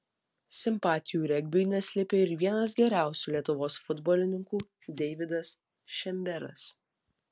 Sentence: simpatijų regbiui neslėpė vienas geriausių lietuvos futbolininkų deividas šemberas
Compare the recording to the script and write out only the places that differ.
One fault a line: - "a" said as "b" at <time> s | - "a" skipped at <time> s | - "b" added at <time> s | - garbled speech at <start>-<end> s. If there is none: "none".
- "ir" added at 2.2 s